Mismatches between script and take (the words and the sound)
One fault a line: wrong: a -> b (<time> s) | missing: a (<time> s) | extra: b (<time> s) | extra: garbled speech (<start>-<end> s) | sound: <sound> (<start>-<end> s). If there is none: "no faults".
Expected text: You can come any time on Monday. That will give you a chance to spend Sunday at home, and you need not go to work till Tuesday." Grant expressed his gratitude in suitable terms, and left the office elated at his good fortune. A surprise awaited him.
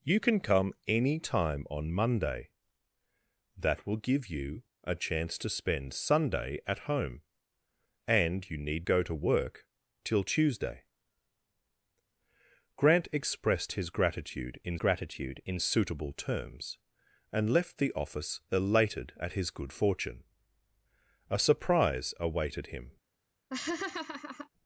missing: not (8.9 s)
extra: gratitude in (14.8 s)
sound: laugh (23.5-24.5 s)